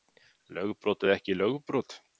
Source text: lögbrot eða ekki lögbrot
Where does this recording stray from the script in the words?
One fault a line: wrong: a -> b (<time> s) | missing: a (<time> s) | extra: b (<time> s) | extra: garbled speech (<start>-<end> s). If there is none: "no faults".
no faults